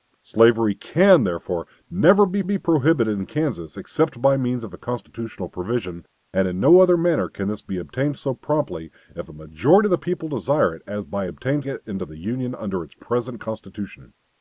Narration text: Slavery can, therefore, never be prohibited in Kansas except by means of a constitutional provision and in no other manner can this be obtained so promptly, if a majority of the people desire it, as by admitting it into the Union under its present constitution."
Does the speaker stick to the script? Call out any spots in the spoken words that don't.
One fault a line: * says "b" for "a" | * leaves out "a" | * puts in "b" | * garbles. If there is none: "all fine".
* puts in "be"
* says "obtained" for "admitting"